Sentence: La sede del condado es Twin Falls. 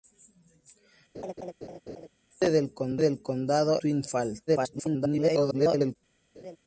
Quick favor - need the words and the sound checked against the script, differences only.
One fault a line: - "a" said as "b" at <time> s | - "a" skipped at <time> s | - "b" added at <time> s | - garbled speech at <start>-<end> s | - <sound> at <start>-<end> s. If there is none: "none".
- laugh at 1.1-2.1 s
- "es" skipped at 3.8 s
- garbled speech at 4.5-6.0 s
- laugh at 6.3-6.6 s